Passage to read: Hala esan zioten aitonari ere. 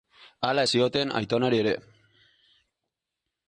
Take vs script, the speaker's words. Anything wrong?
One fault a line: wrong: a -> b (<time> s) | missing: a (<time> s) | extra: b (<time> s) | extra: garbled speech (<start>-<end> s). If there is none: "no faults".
missing: esan (0.6 s)